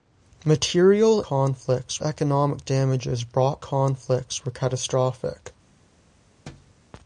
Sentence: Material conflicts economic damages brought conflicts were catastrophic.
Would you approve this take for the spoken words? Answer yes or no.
yes